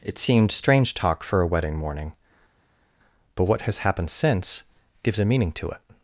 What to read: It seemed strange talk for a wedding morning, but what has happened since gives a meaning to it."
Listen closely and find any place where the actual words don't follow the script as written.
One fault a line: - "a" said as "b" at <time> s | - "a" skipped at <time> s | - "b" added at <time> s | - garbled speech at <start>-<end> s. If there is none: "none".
none